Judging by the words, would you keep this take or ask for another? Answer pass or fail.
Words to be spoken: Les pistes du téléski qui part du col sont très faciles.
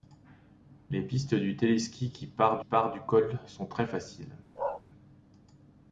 fail